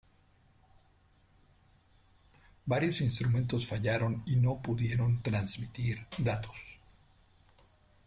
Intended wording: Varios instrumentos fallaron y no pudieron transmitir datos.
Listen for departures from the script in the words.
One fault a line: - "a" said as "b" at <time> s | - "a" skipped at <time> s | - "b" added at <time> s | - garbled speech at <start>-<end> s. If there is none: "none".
none